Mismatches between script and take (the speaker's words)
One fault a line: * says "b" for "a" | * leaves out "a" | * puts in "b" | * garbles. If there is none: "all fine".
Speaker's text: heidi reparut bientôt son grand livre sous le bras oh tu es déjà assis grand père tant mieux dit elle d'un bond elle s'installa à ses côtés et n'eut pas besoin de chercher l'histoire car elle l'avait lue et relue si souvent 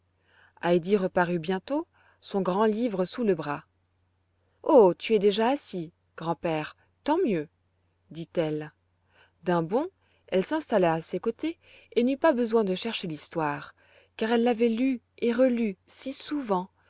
all fine